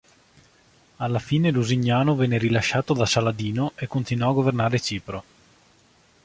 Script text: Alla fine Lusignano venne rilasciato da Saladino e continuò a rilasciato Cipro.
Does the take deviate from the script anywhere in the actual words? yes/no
yes